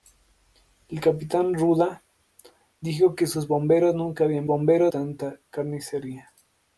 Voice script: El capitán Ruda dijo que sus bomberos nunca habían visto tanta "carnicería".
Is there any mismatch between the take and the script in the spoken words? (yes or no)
yes